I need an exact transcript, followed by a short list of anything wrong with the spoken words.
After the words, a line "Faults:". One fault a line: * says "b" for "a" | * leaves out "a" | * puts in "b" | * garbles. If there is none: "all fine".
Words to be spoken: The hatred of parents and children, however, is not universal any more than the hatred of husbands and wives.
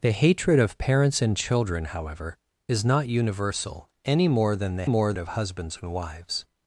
The hatred of parents and children, however, is not universal any more than the more of husbands and wives.
Faults:
* says "more" for "hatred"